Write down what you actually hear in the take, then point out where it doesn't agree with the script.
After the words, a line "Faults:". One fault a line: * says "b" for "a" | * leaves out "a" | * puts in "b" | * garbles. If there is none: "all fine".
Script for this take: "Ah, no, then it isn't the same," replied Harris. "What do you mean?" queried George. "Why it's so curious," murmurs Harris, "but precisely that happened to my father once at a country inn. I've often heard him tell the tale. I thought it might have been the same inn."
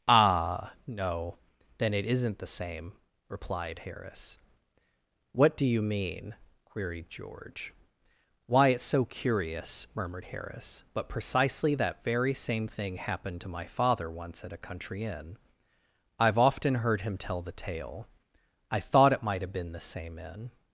"Ah, no, then it isn't the same," replied Harris. "What do you mean?" queried George. "Why it's so curious," murmured Harris, "but precisely that very same thing happened to my father once at a country inn. I've often heard him tell the tale. I thought it might have been the same inn."
Faults:
* says "murmured" for "murmurs"
* puts in "very same thing"